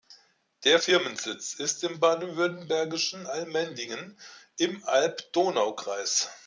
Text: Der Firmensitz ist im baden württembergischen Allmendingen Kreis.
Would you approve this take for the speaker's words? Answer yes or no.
no